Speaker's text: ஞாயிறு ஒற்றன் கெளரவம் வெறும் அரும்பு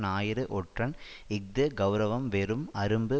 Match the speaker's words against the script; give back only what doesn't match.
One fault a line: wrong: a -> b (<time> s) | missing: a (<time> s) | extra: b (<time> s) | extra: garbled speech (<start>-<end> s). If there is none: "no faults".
extra: இஃது (1.3 s)